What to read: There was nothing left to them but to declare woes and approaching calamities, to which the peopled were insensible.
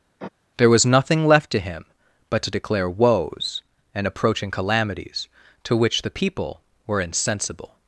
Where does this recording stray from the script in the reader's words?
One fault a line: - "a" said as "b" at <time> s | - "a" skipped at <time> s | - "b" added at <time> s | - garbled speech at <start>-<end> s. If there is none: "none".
- "them" said as "him" at 1.6 s
- "peopled" said as "people" at 6.1 s